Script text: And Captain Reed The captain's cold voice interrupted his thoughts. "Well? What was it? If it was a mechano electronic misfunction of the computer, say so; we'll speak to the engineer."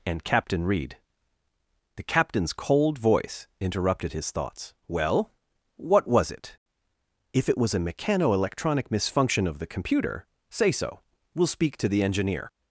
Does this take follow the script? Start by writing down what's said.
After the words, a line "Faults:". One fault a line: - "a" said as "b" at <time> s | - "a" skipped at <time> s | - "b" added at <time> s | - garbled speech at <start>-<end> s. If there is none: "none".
And Captain Reed The captain's cold voice interrupted his thoughts. "Well? What was it? If it was a mechano electronic misfunction of the computer, say so; we'll speak to the engineer."
Faults:
none